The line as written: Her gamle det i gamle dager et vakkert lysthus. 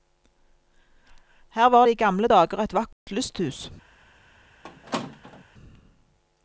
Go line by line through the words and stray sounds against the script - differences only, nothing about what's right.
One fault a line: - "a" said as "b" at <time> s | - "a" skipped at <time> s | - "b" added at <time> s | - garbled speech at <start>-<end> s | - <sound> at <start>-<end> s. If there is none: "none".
- "gamle" said as "var" at 1.7 s
- dropout at 2.9-3.1 s
- squeak at 4.6-5.4 s